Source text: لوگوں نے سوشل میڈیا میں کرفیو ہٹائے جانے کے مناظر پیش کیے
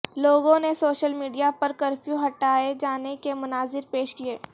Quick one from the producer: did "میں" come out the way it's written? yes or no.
no